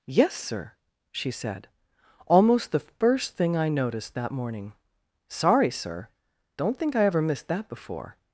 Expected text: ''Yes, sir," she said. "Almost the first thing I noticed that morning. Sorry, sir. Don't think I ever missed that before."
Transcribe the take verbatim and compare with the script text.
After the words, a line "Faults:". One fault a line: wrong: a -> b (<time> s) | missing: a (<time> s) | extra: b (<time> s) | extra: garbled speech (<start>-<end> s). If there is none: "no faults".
''Yes, sir," she said. "Almost the first thing I noticed that morning. Sorry, sir. Don't think I ever missed that before."
Faults:
no faults